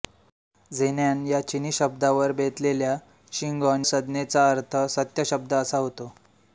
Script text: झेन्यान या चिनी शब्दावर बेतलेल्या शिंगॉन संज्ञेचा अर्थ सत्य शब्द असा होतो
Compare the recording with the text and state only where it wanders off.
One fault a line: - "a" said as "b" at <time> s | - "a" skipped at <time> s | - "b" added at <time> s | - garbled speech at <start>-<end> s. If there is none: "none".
none